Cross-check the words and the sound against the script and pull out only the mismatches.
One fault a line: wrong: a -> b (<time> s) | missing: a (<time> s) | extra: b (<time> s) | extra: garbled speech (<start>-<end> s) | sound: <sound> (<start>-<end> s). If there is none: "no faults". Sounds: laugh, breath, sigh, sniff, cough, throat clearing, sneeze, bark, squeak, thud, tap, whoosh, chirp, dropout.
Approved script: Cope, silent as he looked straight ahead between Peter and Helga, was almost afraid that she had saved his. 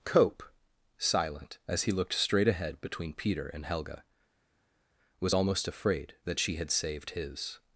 no faults